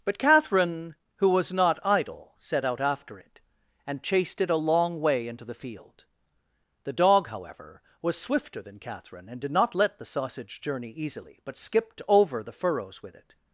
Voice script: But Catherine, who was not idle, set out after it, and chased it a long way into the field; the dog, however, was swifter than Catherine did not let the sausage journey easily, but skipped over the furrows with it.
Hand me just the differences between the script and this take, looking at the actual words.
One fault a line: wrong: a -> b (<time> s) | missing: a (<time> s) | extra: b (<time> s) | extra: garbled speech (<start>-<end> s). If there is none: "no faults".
extra: and (9.3 s)